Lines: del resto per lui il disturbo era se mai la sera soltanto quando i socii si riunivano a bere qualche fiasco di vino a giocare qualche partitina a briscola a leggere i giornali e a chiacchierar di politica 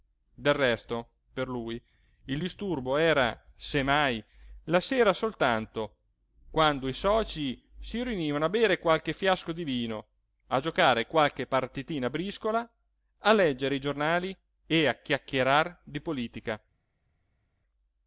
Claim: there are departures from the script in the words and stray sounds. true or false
false